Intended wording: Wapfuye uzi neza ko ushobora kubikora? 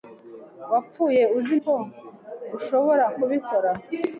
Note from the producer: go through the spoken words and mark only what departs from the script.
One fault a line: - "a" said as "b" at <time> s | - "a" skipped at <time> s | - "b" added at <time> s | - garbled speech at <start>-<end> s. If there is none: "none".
- "neza" skipped at 1.6 s